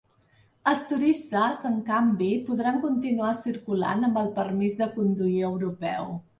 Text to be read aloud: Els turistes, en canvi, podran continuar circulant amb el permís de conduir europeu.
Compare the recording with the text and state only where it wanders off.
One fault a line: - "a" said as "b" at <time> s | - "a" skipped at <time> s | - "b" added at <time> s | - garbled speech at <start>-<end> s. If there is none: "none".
none